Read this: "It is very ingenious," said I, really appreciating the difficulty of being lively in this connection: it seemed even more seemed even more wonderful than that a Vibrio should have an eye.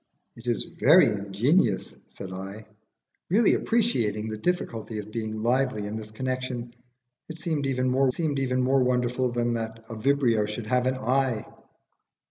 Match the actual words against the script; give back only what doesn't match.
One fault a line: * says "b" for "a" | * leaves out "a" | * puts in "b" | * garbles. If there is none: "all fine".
all fine